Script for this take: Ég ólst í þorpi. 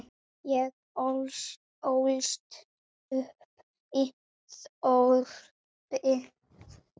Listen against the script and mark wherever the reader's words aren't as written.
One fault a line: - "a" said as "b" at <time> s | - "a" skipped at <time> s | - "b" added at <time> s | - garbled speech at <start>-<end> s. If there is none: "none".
- "upp" added at 3.2 s